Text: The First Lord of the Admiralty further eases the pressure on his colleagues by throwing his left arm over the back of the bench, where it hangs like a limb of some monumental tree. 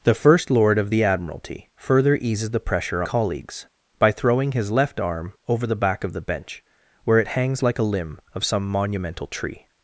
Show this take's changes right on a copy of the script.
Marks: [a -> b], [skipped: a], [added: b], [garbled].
The First Lord of the Admiralty further eases the pressure [skipped: on his] colleagues by throwing his left arm over the back of the bench, where it hangs like a limb of some monumental tree.